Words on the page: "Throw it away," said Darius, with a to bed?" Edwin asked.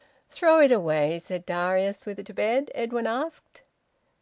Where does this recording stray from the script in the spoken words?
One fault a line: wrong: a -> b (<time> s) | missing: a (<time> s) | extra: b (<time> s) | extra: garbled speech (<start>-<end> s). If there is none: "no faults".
no faults